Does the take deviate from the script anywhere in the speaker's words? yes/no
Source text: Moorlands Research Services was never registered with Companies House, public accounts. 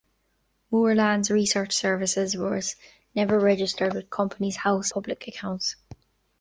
no